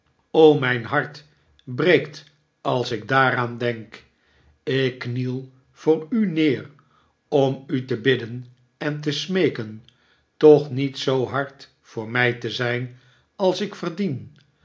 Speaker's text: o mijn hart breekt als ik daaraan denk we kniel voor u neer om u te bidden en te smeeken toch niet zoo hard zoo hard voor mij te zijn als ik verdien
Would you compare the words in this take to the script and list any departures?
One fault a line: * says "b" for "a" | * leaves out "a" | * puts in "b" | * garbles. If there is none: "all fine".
* says "ik" for "we"
* leaves out "zoo hard"